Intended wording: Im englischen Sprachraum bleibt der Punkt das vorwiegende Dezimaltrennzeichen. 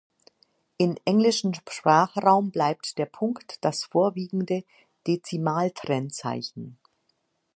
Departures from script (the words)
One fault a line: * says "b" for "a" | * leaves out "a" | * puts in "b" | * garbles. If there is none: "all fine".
all fine